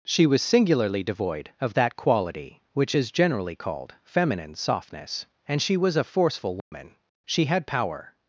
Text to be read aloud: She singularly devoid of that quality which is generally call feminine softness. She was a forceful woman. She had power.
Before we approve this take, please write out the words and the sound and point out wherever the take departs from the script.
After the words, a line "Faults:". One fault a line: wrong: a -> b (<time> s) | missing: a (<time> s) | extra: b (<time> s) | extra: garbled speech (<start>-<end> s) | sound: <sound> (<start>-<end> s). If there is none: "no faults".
She was singularly devoid of that quality which is generally called feminine softness. And she was a forceful woman. She had power.
Faults:
extra: was (0.2 s)
wrong: call -> called (3.6 s)
extra: And (5.5 s)
sound: dropout (6.6-6.7 s)